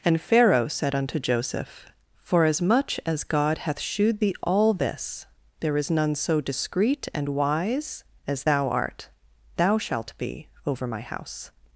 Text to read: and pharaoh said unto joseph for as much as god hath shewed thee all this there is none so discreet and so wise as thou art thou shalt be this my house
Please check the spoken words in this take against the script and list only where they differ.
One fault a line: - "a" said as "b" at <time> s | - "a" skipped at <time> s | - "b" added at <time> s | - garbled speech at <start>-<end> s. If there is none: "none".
- "so" skipped at 7.4 s
- "this" said as "over" at 10.7 s